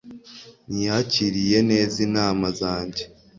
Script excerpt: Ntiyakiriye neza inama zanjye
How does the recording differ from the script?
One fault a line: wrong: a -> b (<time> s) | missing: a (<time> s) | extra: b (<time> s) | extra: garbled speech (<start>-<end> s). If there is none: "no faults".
no faults